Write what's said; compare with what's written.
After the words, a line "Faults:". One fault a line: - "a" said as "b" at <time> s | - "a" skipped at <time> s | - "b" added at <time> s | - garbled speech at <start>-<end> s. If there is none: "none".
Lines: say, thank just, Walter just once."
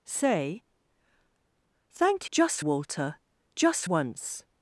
say, thank just, Walter just once."
Faults:
none